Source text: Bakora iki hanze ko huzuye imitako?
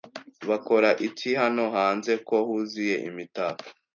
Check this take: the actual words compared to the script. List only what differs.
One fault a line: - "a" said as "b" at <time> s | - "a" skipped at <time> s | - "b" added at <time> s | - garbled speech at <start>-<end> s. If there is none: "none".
- "hano" added at 1.4 s